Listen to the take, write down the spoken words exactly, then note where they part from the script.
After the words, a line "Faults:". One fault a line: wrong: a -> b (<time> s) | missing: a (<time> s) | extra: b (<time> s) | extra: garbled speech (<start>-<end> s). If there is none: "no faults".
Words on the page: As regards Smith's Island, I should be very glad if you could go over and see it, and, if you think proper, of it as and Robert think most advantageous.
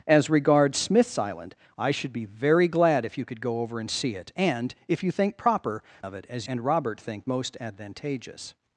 As regards Smith's Island, I should be very glad if you could go over and see it, and, if you think proper, of it as and Robert think most advantageous.
Faults:
no faults